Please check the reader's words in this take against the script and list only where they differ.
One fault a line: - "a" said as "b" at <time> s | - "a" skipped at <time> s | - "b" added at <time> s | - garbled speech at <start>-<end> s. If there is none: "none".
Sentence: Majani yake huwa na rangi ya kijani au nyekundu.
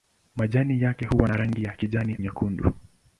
- "au" skipped at 2.1 s